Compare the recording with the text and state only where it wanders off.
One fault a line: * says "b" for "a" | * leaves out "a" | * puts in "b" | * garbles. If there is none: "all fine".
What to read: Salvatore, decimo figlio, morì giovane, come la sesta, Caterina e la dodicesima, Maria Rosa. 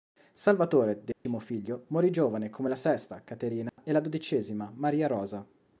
all fine